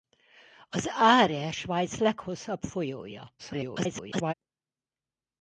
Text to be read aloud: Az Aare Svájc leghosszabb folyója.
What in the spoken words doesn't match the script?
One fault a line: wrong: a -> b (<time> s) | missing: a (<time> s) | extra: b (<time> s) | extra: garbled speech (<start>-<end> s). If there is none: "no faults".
extra: garbled speech (3.4-4.3 s)